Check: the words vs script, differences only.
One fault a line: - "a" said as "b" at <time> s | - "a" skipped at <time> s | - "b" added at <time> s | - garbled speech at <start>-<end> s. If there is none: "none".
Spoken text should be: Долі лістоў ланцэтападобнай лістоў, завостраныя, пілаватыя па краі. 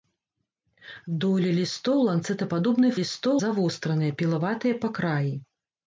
none